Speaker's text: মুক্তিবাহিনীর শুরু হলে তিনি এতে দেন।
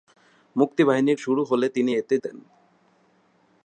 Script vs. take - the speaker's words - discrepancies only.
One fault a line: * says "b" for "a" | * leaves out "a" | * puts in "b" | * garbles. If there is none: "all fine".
all fine